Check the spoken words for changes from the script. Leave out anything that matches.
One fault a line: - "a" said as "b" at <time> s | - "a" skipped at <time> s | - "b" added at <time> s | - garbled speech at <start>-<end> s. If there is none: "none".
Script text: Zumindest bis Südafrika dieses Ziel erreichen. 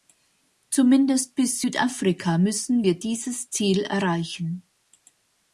- "müssen wir" added at 2.4 s